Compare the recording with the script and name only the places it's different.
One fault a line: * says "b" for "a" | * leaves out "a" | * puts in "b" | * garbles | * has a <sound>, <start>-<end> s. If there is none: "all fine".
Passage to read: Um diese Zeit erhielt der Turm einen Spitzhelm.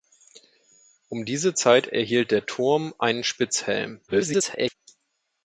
* garbles